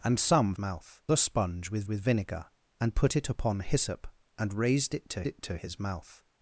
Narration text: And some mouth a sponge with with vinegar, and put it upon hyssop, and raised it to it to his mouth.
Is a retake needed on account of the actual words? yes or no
no